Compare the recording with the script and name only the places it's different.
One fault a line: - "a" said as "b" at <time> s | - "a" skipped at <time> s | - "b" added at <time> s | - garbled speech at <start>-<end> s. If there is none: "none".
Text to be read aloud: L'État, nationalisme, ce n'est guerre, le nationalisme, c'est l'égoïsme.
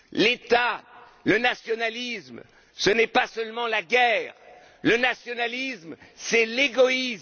- "le" added at 1.2 s
- "pas seulement la" added at 3.1 s